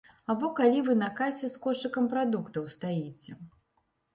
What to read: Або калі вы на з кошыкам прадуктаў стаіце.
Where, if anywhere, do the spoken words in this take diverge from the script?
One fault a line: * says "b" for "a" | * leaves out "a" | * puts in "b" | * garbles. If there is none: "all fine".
* puts in "касе"